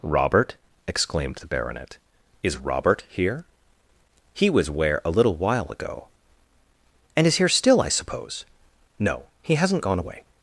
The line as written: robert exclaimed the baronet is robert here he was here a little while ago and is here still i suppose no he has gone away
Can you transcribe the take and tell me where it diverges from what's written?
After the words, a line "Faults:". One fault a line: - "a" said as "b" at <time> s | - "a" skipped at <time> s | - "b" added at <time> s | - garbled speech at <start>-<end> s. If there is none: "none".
robert exclaimed the baronet is robert here he was where a little while ago and is here still i suppose no he hasn't gone away
Faults:
- "here" said as "where" at 4.7 s
- "has" said as "hasn't" at 9.6 s